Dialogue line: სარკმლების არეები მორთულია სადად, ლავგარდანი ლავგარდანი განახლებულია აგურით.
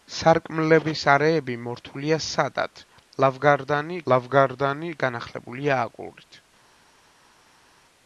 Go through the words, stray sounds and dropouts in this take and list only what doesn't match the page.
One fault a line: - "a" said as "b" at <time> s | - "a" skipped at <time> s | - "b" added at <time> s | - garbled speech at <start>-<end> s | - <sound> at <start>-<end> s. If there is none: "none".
none